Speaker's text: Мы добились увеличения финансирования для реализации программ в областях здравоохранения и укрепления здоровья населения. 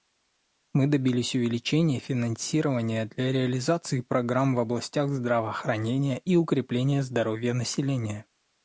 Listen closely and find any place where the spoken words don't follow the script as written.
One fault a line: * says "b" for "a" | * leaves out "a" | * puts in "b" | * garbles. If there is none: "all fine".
all fine